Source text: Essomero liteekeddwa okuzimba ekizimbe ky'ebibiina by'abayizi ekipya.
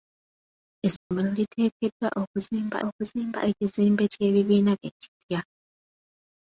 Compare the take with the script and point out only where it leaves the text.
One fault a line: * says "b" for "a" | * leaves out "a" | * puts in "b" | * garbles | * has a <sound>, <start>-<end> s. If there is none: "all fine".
* has a dropout, 1.0-1.1 s
* puts in "okuzimba"
* leaves out "by'abayizi"